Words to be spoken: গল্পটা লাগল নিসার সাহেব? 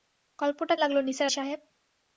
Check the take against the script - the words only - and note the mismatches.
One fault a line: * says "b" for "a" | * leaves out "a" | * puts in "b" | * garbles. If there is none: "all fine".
all fine